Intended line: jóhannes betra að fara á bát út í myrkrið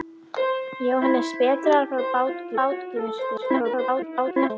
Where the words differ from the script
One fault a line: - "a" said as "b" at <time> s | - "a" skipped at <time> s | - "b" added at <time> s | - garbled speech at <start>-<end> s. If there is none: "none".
- "bát út" added at 2.6 s
- garbled speech at 3.4-4.5 s